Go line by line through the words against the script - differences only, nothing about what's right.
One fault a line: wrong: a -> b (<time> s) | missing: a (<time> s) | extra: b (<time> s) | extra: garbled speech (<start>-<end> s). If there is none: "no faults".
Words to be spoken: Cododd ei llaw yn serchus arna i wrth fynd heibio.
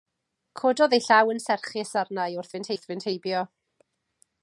extra: wrth fynd (2.7 s)